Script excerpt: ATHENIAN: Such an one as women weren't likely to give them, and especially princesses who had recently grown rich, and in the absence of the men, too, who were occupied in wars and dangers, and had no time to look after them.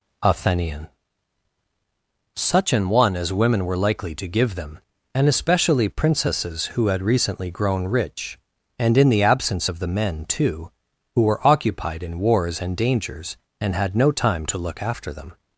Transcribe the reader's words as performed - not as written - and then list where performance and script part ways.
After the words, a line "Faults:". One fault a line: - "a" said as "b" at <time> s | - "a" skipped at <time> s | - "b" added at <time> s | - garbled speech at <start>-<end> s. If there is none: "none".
ATHENIAN: Such an one as women were likely to give them, and especially princesses who had recently grown rich, and in the absence of the men, too, who were occupied in wars and dangers, and had no time to look after them.
Faults:
- "weren't" said as "were" at 3.7 s